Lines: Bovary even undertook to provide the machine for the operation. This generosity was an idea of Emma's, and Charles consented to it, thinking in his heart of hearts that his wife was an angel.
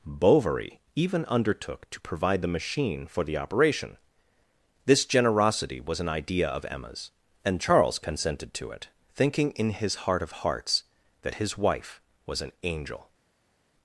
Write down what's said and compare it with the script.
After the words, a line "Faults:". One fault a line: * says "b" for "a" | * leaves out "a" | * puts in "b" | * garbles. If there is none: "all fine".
Bovary even undertook to provide the machine for the operation. This generosity was an idea of Emma's, and Charles consented to it, thinking in his heart of hearts that his wife was an angel.
Faults:
all fine